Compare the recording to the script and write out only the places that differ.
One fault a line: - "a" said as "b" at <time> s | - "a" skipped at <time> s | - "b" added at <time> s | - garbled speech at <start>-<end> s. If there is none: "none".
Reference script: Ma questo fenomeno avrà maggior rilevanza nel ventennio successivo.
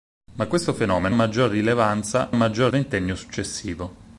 - "avrà" skipped at 1.1 s
- "nel" said as "maggior" at 2.3 s